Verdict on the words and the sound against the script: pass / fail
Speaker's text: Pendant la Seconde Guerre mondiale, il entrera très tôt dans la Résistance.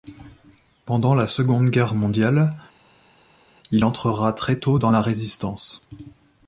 pass